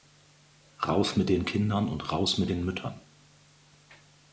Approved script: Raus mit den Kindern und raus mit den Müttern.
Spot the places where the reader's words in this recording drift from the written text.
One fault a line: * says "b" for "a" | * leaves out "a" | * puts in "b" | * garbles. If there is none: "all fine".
all fine